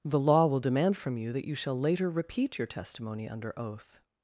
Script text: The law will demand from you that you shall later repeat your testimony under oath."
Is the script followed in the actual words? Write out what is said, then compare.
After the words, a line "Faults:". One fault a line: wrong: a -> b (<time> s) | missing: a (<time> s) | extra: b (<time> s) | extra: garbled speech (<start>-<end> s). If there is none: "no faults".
The law will demand from you that you shall later repeat your testimony under oath."
Faults:
no faults